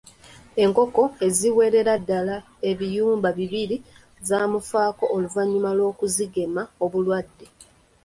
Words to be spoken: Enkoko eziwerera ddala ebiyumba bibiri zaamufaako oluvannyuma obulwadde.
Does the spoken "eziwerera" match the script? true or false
true